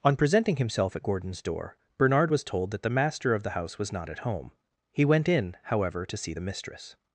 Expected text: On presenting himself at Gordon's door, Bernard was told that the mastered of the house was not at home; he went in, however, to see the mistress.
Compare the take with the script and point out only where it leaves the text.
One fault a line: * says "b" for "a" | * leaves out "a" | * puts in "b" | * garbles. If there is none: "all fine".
* says "master" for "mastered"